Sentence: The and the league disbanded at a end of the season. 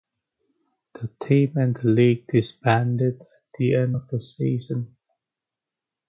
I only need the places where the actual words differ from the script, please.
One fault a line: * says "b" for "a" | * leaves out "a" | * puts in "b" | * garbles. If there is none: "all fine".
* puts in "team"
* says "the" for "a"